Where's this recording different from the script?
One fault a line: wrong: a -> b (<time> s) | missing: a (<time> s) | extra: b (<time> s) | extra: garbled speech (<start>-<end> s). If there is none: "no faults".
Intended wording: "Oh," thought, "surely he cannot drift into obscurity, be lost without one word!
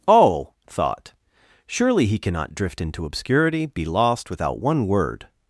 no faults